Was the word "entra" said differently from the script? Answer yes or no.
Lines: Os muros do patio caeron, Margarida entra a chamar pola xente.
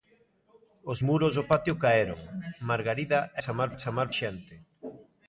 yes